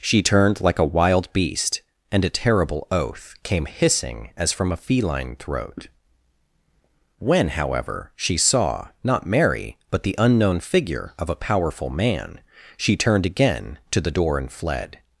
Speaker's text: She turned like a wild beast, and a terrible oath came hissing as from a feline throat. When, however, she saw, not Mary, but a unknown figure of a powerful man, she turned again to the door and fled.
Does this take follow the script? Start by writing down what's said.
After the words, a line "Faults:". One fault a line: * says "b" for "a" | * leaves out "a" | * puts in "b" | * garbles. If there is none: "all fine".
She turned like a wild beast, and a terrible oath came hissing as from a feline throat. When, however, she saw, not Mary, but the unknown figure of a powerful man, she turned again to the door and fled.
Faults:
* says "the" for "a"